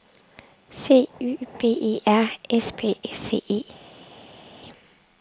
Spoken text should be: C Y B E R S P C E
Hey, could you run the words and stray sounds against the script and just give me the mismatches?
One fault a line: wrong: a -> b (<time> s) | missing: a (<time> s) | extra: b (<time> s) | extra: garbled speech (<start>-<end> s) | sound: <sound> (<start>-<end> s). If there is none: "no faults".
no faults